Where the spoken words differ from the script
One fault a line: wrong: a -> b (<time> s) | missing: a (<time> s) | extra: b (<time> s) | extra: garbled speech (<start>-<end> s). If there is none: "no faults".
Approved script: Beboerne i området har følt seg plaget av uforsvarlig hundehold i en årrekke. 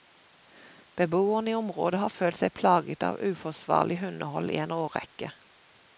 no faults